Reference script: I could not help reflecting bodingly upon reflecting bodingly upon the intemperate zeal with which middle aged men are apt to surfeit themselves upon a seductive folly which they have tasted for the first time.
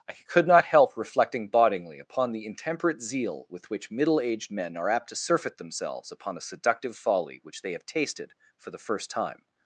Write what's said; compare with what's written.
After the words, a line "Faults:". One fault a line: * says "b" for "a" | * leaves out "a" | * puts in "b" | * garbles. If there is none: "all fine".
I could not help reflecting bodingly upon the intemperate zeal with which middle aged men are apt to surfeit themselves upon a seductive folly which they have tasted for the first time.
Faults:
* leaves out "reflecting bodingly upon"